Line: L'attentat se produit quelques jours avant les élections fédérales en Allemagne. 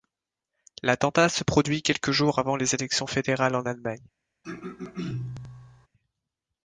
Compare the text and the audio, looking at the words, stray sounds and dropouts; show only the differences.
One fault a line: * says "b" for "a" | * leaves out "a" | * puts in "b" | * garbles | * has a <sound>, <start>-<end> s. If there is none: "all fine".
* has a throat clearing, 4.4-5.9 s